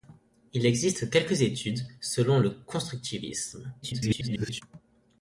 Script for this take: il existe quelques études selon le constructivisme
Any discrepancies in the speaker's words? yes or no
yes